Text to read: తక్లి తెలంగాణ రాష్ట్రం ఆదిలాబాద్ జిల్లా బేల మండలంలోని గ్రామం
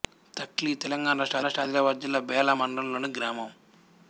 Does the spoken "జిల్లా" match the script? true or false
true